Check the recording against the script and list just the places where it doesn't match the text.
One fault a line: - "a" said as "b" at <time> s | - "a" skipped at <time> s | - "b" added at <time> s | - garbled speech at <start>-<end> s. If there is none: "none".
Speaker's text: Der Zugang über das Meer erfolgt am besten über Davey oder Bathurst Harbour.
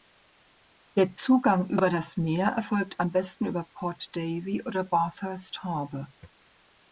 - "Port" added at 3.7 s